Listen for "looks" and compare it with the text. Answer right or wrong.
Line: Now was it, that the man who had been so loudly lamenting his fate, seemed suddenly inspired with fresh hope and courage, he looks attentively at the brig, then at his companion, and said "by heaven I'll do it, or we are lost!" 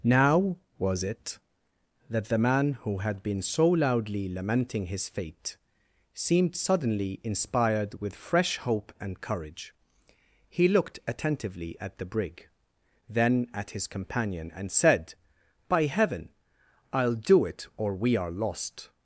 wrong